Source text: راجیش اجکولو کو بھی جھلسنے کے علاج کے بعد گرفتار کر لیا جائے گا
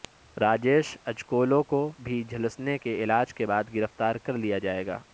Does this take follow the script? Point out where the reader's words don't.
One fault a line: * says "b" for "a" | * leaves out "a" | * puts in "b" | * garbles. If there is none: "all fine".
all fine